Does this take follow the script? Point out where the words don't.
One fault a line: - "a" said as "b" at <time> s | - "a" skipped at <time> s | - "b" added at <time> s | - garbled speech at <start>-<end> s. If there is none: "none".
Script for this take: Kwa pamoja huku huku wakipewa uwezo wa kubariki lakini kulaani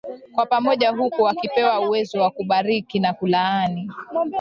- "huku" skipped at 1.2 s
- "lakini" said as "na" at 3.0 s